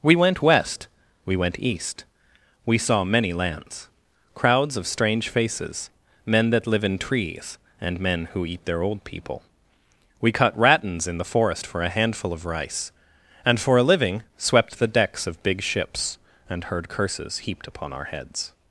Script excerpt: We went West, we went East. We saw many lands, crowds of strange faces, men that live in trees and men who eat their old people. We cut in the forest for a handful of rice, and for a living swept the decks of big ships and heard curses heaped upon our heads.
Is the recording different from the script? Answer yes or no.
yes